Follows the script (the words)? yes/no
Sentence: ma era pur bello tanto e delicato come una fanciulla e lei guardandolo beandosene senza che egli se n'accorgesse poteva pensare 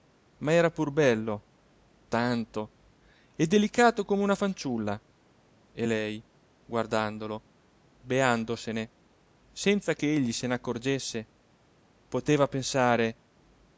yes